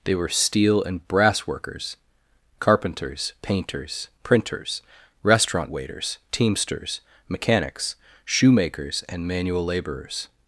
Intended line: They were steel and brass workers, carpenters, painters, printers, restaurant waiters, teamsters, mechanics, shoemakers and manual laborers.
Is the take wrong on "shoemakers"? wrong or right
right